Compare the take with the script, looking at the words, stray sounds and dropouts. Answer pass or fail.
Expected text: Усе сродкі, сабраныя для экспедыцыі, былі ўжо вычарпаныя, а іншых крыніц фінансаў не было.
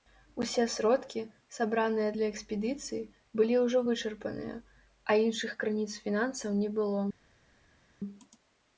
pass